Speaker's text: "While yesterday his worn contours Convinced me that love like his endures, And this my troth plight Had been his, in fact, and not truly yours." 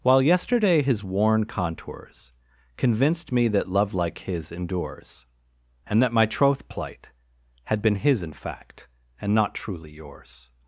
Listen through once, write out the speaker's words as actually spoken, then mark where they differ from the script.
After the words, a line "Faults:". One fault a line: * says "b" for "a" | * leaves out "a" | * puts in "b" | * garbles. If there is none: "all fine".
"While yesterday his worn contours Convinced me that love like his endures, And that my troth plight Had been his, in fact, and not truly yours."
Faults:
* says "that" for "this"